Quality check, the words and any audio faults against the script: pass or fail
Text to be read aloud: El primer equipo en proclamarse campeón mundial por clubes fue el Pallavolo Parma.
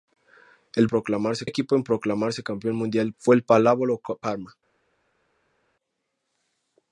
fail